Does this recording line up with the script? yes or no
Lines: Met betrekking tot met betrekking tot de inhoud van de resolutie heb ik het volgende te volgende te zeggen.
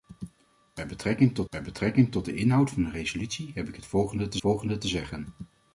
yes